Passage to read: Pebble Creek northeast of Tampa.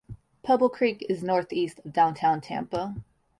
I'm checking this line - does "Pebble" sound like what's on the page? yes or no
yes